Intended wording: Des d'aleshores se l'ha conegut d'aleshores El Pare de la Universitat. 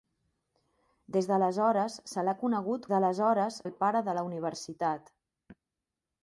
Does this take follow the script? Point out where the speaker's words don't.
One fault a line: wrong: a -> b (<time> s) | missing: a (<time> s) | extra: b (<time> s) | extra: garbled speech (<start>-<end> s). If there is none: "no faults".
no faults